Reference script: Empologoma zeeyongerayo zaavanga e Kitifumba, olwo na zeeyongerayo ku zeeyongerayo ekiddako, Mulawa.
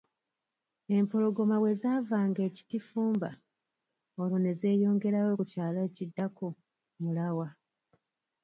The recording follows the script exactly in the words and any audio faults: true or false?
false